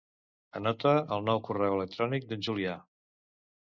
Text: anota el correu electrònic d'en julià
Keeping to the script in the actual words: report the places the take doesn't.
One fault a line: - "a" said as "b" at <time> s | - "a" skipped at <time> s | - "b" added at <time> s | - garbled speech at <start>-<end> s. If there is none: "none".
- "nou" added at 1.3 s